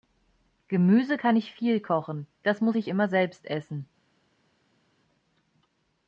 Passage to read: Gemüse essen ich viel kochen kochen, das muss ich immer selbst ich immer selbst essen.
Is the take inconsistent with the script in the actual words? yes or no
yes